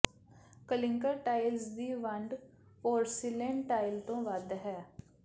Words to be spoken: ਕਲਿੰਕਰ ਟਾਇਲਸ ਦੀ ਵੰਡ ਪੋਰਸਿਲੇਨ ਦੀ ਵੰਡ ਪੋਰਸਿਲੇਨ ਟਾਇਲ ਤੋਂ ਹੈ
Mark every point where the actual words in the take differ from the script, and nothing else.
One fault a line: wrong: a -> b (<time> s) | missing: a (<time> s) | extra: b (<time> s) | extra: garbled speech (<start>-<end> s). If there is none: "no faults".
missing: ਦੀ ਵੰਡ ਪੋਰਸਿਲੇਨ (3.6 s)
extra: ਵੱਧ (4.2 s)